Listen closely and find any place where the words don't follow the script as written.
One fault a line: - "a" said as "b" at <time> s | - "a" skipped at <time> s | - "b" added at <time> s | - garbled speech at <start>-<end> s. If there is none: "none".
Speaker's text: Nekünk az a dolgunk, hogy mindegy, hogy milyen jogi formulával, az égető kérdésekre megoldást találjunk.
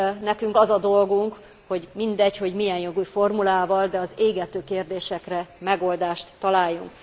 - "de" added at 3.9 s